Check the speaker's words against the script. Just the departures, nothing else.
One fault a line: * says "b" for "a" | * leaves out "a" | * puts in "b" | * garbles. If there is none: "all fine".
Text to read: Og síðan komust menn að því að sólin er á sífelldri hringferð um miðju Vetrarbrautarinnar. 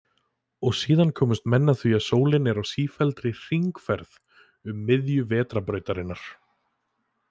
all fine